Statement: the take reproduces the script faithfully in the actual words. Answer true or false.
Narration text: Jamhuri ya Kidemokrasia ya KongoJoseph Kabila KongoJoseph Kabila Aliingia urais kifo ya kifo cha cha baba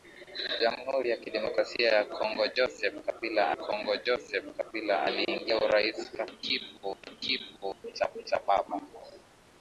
true